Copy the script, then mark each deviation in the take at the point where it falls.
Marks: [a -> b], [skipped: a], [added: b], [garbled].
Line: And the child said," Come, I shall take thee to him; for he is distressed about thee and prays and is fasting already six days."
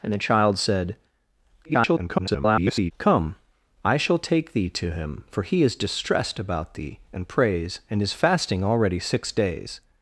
And the child said," [garbled] Come, I shall take thee to him; for he is distressed about thee and prays and is fasting already six days."